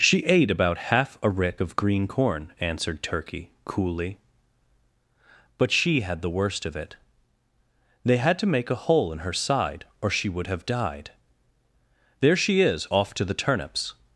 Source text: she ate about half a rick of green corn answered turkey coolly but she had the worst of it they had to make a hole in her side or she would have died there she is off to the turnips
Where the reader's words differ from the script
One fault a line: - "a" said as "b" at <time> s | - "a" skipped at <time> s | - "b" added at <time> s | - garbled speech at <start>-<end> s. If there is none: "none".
none